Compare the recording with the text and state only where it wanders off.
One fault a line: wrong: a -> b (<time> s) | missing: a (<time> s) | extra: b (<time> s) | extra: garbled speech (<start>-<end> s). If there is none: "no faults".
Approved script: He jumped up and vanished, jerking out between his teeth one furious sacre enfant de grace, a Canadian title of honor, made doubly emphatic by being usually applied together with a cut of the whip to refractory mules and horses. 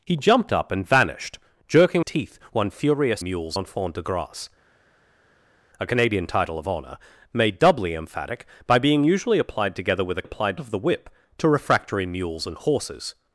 missing: out between his (2.0 s)
wrong: sacre -> mules (3.2 s)
wrong: cut -> applied (10.2 s)